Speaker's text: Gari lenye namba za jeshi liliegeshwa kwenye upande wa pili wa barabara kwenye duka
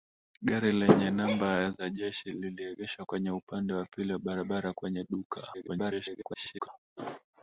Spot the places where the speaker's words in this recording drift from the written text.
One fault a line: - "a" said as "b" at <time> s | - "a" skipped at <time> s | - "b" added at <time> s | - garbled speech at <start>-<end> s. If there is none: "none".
- garbled speech at 5.5-6.7 s